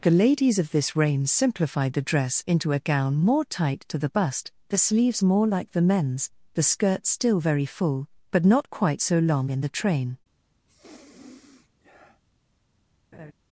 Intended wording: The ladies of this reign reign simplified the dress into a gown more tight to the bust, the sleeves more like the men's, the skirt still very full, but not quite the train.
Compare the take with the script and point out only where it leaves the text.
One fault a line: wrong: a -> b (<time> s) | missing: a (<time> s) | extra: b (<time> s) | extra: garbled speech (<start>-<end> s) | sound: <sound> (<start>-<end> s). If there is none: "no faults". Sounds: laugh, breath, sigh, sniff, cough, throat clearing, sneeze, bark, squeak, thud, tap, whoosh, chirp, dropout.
missing: reign (1.3 s)
extra: so long in (9.0 s)
sound: sniff (10.7-12.2 s)
sound: laugh (13.1-13.3 s)